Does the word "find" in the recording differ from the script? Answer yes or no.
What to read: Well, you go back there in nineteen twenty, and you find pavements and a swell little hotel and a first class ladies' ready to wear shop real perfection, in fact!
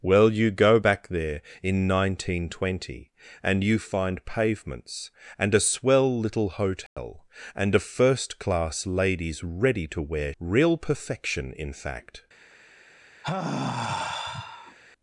no